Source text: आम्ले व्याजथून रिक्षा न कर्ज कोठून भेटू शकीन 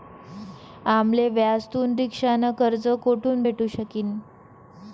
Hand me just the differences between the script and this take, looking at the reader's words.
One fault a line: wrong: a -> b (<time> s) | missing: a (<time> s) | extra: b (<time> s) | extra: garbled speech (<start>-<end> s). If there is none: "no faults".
no faults